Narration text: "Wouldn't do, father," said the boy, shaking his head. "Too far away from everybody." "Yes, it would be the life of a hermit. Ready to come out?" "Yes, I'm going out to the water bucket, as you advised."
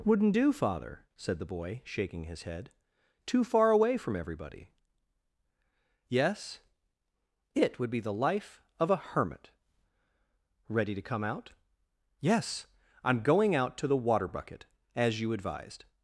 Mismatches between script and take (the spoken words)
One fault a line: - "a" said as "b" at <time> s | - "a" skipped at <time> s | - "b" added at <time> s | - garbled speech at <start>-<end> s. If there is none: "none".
none